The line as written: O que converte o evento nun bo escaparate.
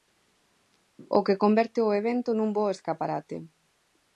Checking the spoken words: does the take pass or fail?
pass